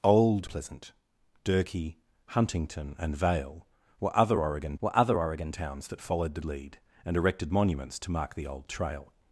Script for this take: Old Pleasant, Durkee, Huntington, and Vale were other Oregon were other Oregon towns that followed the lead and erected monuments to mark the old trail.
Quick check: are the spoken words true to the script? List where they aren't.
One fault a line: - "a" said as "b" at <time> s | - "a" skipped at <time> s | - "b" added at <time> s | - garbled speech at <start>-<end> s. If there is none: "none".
none